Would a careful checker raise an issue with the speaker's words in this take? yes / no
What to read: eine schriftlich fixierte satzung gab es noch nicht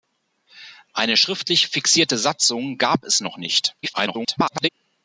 yes